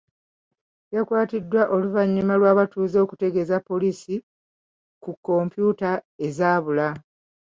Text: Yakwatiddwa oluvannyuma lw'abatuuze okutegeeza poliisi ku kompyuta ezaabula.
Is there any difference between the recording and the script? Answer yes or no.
no